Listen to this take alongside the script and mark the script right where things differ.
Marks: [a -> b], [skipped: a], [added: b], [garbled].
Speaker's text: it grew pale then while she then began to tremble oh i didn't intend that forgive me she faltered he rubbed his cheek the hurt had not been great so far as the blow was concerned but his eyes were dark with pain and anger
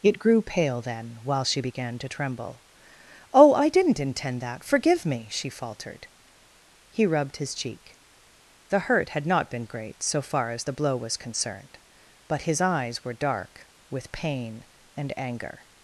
it grew pale then while she [skipped: then] began to tremble oh i didn't intend that forgive me she faltered he rubbed his cheek the hurt had not been great so far as the blow was concerned but his eyes were dark with pain and anger